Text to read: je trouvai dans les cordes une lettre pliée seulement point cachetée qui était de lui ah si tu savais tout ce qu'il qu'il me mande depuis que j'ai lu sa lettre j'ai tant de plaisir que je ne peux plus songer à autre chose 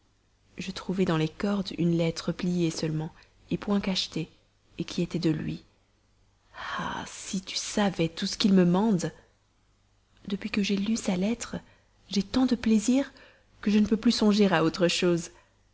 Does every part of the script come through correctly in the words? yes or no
no